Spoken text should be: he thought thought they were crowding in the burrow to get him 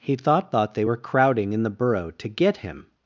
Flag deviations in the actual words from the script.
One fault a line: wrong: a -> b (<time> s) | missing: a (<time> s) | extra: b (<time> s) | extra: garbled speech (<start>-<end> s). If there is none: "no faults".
no faults